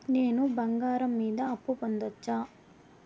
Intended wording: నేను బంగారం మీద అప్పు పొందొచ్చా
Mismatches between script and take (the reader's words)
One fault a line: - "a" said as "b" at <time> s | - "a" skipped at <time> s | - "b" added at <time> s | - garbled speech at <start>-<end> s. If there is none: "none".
none